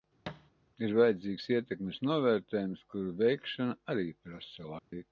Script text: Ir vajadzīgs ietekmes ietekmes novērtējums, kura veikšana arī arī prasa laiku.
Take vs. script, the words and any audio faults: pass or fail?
fail